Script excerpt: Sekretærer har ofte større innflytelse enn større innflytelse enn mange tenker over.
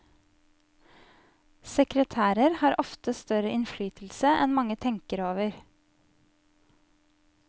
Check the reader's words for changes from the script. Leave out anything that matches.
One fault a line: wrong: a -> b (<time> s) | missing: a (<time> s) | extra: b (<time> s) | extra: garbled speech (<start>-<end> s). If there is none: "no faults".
missing: større innflytelse enn (4.6 s)